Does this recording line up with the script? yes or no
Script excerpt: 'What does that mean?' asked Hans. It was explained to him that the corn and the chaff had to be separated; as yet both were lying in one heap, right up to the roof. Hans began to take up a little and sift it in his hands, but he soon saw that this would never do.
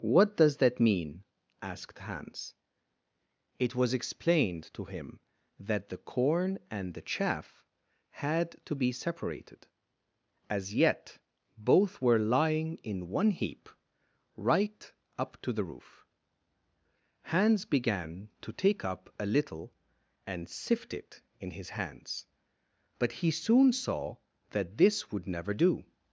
yes